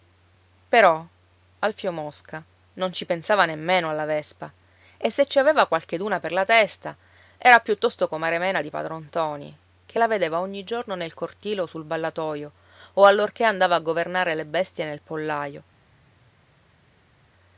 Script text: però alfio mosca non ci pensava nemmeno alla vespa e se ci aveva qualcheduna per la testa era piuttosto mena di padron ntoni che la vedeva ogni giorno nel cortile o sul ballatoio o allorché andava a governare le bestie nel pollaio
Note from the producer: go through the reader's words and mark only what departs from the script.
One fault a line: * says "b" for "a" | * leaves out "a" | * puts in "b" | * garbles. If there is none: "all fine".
* puts in "comare"